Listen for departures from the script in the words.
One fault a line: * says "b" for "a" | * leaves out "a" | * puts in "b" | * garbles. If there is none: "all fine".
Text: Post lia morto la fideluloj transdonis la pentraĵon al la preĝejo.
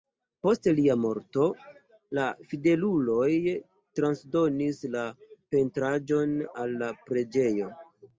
all fine